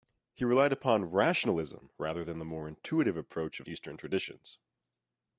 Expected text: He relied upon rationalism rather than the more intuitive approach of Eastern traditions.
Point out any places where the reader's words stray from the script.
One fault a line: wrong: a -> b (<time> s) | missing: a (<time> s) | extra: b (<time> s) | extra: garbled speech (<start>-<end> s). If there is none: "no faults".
no faults